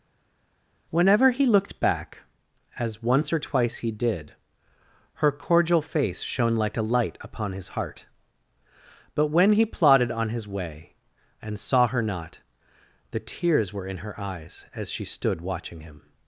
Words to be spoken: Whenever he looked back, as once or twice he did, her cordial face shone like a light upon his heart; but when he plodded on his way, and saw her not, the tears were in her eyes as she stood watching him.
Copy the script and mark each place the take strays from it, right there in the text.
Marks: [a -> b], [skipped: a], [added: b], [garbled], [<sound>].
Whenever he looked back, as once or twice he did, her cordial face shone like a light upon his heart; but when he plodded on his way, and saw her not, the tears were in her eyes as she stood watching him.